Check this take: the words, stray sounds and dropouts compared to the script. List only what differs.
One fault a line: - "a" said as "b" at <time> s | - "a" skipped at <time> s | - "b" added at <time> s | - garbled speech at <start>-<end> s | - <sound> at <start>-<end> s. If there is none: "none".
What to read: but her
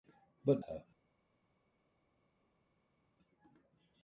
none